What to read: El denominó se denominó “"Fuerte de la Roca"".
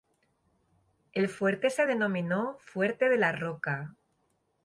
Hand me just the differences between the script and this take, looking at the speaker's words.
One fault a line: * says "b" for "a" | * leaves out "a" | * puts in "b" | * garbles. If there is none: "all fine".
* says "fuerte" for "denominó"